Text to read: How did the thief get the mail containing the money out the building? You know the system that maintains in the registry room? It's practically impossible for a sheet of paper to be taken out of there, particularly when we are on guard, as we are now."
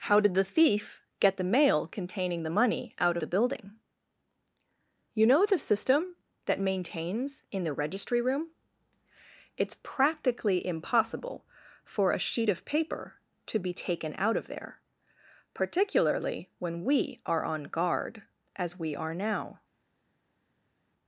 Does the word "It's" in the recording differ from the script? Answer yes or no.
no